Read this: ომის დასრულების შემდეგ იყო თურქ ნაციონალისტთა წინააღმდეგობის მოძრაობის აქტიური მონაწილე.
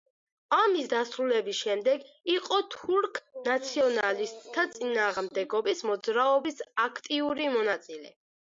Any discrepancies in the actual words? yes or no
no